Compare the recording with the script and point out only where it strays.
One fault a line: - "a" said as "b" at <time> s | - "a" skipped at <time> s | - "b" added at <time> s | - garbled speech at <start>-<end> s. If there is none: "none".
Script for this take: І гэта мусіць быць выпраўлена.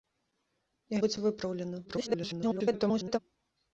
- "гэта мусіць" skipped at 1.0 s
- garbled speech at 1.8-3.2 s